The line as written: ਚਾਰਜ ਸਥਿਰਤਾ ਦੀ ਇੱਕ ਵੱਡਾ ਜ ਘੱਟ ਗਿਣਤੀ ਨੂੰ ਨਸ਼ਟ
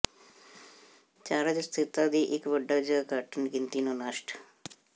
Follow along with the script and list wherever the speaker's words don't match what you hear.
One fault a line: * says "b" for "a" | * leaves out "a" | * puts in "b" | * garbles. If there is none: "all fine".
all fine